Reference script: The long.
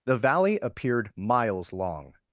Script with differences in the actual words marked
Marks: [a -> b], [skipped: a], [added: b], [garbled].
The [added: valley appeared miles] long.